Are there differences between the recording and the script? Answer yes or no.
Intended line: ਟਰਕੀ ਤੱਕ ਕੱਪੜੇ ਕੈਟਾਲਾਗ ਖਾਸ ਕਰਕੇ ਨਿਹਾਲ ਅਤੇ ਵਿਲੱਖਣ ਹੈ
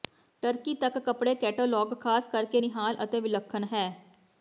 no